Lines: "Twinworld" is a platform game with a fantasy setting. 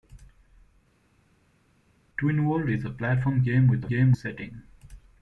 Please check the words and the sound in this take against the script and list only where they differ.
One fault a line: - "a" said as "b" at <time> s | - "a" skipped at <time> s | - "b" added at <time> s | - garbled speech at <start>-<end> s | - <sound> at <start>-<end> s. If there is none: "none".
- "fantasy" said as "game" at 3.9 s